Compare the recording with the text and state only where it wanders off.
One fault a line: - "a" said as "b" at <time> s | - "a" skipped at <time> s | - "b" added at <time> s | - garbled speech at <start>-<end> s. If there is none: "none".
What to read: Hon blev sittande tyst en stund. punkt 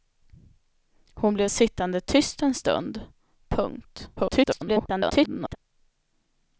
- garbled speech at 4.2-5.6 s